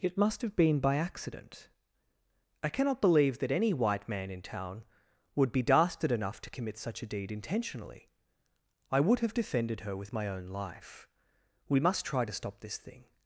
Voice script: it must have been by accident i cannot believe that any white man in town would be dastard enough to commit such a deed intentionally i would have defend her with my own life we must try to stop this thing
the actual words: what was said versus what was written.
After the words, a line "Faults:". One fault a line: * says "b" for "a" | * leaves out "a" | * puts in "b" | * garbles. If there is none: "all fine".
it must have been by accident i cannot believe that any white man in town would be dastard enough to commit such a deed intentionally i would have defended her with my own life we must try to stop this thing
Faults:
* says "defended" for "defend"